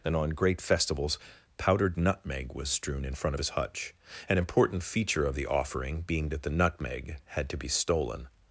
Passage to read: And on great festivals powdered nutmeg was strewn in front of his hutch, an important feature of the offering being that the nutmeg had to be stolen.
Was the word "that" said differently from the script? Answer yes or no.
no